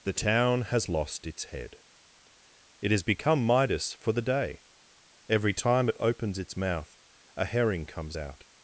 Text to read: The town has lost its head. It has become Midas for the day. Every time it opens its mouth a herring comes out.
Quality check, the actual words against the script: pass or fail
pass